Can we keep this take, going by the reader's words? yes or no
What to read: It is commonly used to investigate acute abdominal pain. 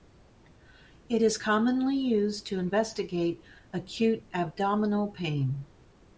yes